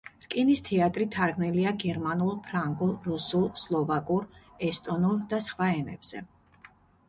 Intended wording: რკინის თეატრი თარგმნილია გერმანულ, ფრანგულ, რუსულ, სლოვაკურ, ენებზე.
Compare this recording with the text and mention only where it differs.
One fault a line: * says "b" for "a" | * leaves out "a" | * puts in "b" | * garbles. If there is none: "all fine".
* puts in "ესტონურ და სხვა"